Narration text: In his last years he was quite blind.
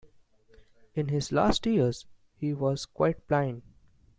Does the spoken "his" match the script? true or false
true